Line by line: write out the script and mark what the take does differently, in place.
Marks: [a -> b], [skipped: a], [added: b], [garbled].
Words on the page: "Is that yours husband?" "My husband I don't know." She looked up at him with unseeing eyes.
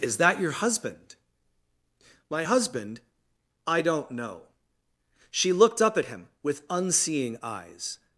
"Is that [yours -> your] husband?" "My husband I don't know." She looked up at him with unseeing eyes.